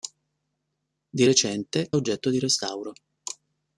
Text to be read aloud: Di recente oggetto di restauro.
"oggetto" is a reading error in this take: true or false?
false